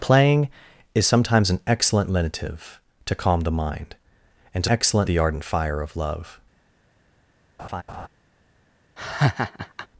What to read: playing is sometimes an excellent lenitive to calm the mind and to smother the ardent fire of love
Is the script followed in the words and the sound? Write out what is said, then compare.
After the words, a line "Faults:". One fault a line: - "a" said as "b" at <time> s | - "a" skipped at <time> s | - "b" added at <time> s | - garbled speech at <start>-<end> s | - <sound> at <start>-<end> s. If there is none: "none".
playing is sometimes an excellent lenitive to calm the mind and to excellent the ardent fire of love
Faults:
- "smother" said as "excellent" at 4.7 s
- laugh at 7.6-8.1 s
- laugh at 9.0-9.9 s